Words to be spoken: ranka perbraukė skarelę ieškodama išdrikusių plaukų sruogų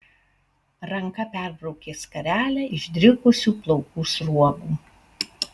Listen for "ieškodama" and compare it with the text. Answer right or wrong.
wrong